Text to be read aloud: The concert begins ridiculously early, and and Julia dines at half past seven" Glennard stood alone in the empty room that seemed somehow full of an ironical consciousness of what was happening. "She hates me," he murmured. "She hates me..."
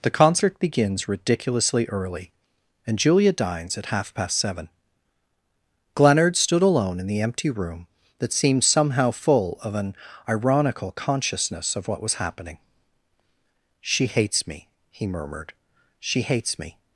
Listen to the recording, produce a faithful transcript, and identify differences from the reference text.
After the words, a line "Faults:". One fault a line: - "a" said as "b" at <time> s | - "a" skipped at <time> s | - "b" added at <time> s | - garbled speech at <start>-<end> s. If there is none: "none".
The concert begins ridiculously early, and Julia dines at half past seven" Glennard stood alone in the empty room that seemed somehow full of an ironical consciousness of what was happening. "She hates me," he murmured. "She hates me..."
Faults:
- "and" skipped at 3.0 s